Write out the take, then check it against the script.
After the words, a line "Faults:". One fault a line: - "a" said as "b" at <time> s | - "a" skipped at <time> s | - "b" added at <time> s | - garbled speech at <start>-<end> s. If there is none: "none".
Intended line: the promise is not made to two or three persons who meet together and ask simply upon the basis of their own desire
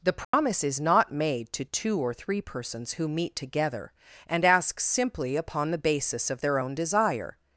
the promise is not made to two or three persons who meet together and ask simply upon the basis of their own desire
Faults:
none